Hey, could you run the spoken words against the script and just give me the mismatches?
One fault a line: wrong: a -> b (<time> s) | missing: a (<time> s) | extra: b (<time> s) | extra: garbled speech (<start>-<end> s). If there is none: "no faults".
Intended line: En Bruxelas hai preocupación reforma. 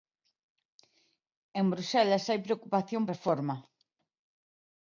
no faults